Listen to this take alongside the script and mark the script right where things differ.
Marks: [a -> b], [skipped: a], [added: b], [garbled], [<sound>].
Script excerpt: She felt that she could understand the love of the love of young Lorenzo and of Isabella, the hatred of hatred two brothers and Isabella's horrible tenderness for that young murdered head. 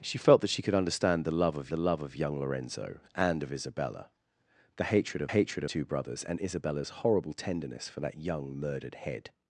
She felt that she could understand the love of the love of young Lorenzo and of Isabella, the hatred of hatred two brothers and Isabella's horrible tenderness for that young murdered head.